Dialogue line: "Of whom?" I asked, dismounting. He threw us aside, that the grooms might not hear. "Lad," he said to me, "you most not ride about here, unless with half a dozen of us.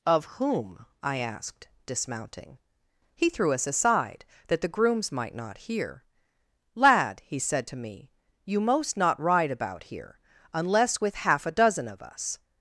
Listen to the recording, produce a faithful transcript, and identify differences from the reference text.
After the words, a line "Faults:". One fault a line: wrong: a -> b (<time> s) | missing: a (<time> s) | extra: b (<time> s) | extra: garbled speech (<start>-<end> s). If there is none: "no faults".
"Of whom?" I asked, dismounting. He threw us aside, that the grooms might not hear. "Lad," he said to me, "you most not ride about here, unless with half a dozen of us.
Faults:
no faults